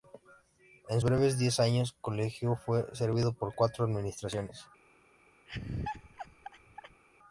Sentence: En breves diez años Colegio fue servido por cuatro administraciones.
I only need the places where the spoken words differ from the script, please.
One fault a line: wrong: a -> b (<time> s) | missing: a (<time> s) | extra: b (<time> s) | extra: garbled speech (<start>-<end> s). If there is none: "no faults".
no faults